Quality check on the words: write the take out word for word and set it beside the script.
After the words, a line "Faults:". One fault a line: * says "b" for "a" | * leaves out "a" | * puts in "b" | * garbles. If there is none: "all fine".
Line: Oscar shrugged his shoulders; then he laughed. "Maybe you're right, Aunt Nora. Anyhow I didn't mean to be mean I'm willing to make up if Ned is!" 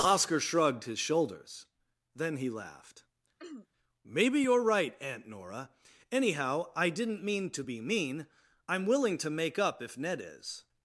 Oscar shrugged his shoulders; then he laughed. "Maybe you're right, Aunt Nora. Anyhow I didn't mean to be mean I'm willing to make up if Ned is!"
Faults:
all fine